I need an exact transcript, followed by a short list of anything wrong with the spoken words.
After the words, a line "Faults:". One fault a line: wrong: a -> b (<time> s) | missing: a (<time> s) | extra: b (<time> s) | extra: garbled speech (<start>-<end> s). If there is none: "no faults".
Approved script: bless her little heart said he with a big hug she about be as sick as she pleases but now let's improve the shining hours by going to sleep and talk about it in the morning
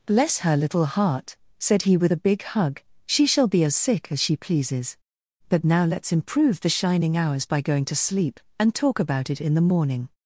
bless her little heart said he with a big hug she shall be as sick as she pleases but now let's improve the shining hours by going to sleep and talk about it in the morning
Faults:
wrong: about -> shall (3.3 s)